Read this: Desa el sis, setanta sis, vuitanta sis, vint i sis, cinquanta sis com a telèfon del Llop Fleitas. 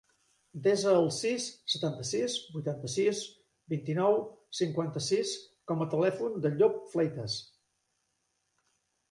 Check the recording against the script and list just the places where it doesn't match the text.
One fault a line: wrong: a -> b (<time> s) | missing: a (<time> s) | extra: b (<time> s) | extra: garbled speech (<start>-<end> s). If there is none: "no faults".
wrong: sis -> nou (4.0 s)